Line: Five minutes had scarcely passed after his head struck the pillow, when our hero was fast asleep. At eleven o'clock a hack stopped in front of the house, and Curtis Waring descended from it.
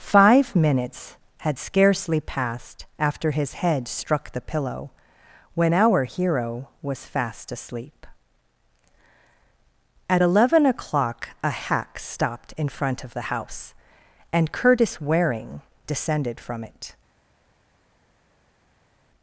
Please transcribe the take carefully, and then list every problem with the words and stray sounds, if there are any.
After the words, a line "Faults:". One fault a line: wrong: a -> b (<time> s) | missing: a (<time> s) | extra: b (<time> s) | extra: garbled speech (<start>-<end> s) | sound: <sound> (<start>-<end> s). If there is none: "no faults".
Five minutes had scarcely passed after his head struck the pillow, when our hero was fast asleep. At eleven o'clock a hack stopped in front of the house, and Curtis Waring descended from it.
Faults:
no faults